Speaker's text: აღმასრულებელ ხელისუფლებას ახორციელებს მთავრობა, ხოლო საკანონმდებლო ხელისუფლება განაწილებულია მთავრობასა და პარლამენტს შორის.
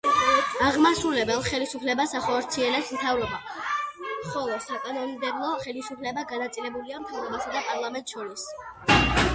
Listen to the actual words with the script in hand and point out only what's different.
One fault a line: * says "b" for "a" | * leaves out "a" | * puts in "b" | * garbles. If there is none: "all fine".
all fine